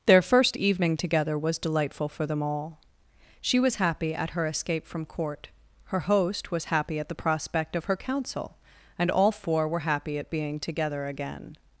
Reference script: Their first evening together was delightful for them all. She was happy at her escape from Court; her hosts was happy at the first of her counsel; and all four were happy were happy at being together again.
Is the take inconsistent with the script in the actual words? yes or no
yes